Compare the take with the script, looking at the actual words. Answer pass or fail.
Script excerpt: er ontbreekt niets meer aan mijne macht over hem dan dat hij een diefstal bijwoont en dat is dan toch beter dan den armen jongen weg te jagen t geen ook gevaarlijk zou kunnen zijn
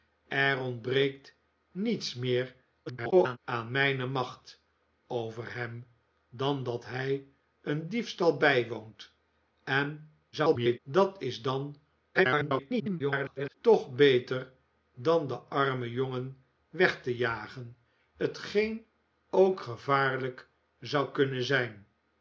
fail